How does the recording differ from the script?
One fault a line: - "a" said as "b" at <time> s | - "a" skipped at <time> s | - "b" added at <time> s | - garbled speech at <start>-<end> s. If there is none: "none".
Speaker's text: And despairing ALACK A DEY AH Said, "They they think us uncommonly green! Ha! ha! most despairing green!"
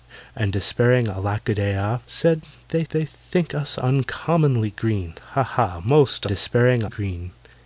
none